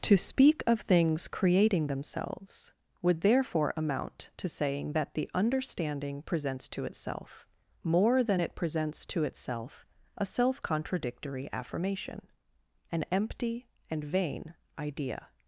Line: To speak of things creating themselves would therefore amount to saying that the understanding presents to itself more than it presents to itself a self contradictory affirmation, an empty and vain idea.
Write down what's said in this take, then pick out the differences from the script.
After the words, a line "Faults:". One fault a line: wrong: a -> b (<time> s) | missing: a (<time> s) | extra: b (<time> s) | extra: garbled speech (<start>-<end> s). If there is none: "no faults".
To speak of things creating themselves would therefore amount to saying that the understanding presents to itself more than it presents to itself a self contradictory affirmation, an empty and vain idea.
Faults:
no faults